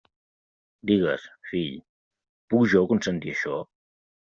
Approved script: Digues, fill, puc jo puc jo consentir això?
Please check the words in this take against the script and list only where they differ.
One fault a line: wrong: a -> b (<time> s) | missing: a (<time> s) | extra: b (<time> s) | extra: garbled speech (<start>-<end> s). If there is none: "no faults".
missing: puc jo (2.9 s)